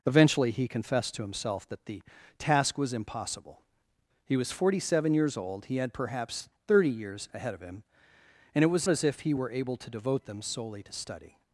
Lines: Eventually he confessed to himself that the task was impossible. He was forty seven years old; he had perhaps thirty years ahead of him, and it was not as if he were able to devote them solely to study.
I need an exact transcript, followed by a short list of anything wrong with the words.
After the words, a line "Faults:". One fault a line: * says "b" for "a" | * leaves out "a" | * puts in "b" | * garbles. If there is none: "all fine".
Eventually he confessed to himself that the task was impossible. He was forty seven years old; he had perhaps thirty years ahead of him, and it was as if he were able to devote them solely to study.
Faults:
* leaves out "not"